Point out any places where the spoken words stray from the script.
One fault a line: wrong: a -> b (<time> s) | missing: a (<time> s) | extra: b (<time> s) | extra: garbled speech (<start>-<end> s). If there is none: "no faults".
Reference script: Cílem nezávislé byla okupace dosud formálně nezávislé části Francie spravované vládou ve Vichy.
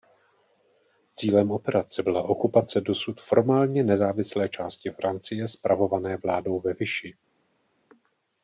wrong: nezávislé -> operace (1.5 s)